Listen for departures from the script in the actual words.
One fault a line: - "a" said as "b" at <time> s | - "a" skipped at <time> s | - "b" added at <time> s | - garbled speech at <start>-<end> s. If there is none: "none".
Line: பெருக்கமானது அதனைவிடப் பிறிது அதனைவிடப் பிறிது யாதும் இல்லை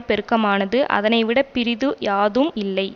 - "அதனைவிடப் பிறிது" skipped at 1.9 s